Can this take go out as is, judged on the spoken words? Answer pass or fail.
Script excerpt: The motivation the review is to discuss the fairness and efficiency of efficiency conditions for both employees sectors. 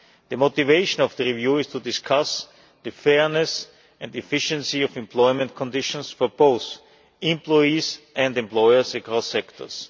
fail